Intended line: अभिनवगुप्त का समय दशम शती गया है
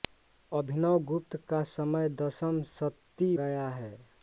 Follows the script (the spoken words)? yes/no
yes